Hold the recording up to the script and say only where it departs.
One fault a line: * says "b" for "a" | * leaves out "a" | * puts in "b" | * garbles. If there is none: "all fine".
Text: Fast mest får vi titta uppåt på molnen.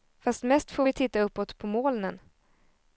all fine